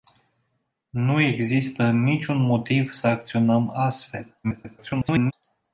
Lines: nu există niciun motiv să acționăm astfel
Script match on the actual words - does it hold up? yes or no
no